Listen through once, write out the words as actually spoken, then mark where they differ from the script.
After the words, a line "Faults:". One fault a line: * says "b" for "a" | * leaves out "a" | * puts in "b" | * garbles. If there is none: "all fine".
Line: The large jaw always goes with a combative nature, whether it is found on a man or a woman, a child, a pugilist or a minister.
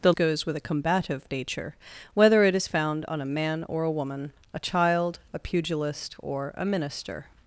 The goes with a combative nature, whether it is found on a man or a woman, a child, a pugilist or a minister.
Faults:
* leaves out "large jaw always"